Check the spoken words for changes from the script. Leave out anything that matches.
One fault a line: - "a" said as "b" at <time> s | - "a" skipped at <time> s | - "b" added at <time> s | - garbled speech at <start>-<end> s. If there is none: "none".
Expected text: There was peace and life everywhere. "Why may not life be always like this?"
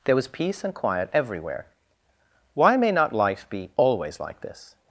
- "life" said as "quiet" at 0.7 s